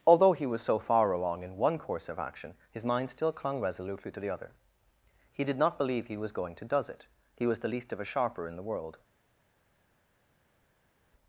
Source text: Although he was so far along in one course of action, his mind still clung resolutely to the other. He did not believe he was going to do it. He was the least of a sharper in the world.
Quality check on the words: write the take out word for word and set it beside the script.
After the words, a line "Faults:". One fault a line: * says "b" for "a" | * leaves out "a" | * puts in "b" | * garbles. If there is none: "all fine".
Although he was so far along in one course of action, his mind still clung resolutely to the other. He did not believe he was going to does it. He was the least of a sharper in the world.
Faults:
* says "does" for "do"